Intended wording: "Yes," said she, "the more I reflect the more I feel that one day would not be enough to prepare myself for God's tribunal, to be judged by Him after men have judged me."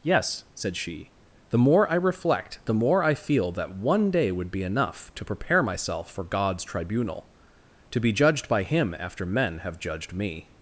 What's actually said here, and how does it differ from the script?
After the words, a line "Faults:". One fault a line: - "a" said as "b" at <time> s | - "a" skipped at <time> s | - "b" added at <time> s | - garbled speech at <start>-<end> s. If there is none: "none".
"Yes," said she, "the more I reflect the more I feel that one day would be enough to prepare myself for God's tribunal, to be judged by Him after men have judged me."
Faults:
- "not" skipped at 4.5 s